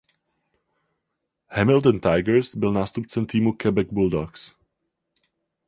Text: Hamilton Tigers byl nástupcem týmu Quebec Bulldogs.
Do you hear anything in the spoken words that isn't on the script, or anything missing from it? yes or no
no